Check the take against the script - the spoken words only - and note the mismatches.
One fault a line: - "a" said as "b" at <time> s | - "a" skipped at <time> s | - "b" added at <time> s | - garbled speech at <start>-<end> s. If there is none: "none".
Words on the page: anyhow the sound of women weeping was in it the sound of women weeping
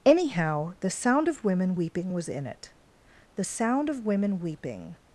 none